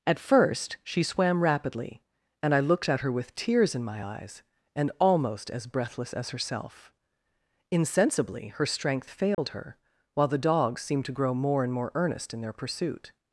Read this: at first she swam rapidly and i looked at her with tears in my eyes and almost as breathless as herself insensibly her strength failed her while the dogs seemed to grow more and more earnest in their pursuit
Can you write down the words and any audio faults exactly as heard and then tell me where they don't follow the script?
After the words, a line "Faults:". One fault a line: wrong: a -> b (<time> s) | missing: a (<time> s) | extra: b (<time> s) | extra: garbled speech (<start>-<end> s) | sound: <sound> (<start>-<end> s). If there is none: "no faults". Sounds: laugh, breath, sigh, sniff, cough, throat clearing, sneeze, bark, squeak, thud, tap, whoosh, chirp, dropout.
at first she swam rapidly and i looked at her with tears in my eyes and almost as breathless as herself insensibly her strength failed her while the dogs seemed to grow more and more earnest in their pursuit
Faults:
sound: dropout (9.3-9.4 s)